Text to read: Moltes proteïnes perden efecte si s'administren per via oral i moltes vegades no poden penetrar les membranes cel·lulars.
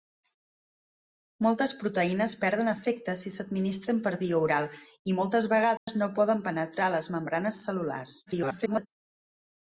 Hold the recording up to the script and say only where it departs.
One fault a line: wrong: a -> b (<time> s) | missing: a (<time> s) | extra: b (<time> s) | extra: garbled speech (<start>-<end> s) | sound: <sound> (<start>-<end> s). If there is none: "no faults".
sound: dropout (5.8-5.9 s)
extra: garbled speech (8.3-8.9 s)